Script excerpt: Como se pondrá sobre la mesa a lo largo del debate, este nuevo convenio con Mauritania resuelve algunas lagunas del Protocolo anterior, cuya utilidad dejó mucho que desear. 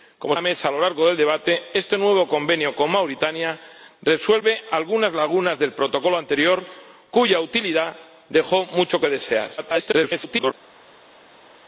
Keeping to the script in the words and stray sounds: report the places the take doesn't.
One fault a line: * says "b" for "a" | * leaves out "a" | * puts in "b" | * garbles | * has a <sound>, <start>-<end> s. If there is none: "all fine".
* leaves out "se pondrá sobre"
* garbles